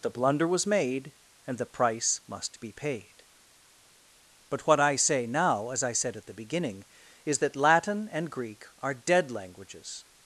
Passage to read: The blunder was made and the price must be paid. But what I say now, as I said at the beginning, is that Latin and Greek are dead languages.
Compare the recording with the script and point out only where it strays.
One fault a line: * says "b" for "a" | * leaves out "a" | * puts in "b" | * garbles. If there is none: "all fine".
all fine